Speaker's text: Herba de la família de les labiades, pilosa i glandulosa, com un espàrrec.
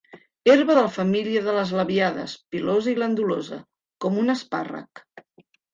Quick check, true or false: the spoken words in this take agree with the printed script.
true